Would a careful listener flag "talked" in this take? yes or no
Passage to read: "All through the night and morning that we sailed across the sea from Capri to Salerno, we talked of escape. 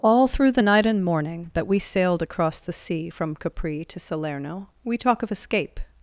yes